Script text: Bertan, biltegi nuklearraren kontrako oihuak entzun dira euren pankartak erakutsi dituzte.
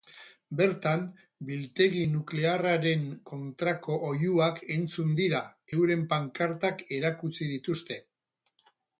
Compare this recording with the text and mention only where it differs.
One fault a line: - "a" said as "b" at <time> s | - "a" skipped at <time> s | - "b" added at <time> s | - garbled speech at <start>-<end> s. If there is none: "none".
none